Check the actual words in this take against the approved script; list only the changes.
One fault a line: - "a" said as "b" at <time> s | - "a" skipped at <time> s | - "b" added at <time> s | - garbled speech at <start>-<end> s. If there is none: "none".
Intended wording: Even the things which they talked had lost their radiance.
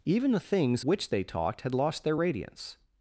none